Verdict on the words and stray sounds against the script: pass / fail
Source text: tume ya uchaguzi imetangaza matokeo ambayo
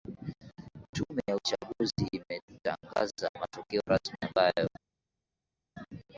fail